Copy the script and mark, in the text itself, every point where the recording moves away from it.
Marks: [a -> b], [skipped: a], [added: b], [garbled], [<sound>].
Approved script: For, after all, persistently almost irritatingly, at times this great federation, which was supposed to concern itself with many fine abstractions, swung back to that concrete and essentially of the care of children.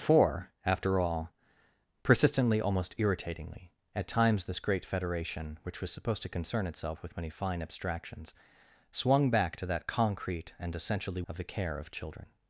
For, after all, persistently almost irritatingly, at times this great federation, which was supposed to concern itself with many fine abstractions, swung back to that concrete and essentially of the care of children.